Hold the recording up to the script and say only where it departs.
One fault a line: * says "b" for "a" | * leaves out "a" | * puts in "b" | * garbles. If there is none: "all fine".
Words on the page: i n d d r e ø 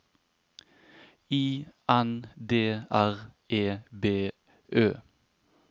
* leaves out "d"
* puts in "b"